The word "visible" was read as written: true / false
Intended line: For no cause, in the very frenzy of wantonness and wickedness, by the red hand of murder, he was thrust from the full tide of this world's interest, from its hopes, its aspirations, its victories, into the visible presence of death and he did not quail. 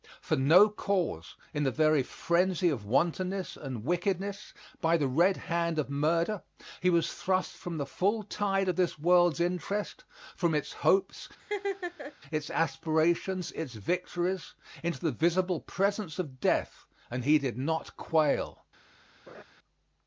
true